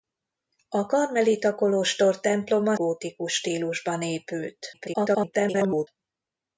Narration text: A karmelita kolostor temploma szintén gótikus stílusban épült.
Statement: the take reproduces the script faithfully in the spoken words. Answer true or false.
false